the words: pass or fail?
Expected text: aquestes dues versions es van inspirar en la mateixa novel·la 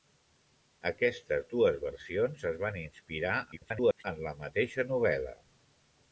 fail